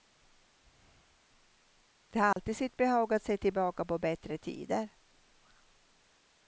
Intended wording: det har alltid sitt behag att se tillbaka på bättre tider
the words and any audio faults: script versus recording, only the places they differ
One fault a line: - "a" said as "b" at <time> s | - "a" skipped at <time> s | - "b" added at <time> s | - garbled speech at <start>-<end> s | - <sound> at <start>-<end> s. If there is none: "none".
- dropout at 2.3-2.4 s